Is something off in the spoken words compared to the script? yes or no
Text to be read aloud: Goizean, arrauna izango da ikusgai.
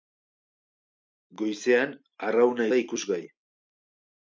yes